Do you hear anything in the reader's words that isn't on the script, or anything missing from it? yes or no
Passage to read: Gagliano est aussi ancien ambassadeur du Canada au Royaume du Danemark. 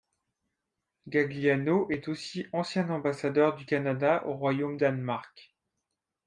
yes